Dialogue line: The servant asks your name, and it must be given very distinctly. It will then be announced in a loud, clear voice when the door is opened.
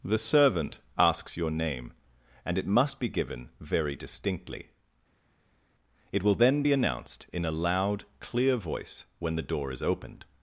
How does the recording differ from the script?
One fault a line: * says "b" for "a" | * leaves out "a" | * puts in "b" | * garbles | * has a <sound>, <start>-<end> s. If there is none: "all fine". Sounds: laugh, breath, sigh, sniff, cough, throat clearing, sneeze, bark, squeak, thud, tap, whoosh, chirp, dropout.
all fine